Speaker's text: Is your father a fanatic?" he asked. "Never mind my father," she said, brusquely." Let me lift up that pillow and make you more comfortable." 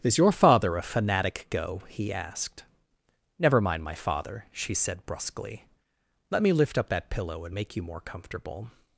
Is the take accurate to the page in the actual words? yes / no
no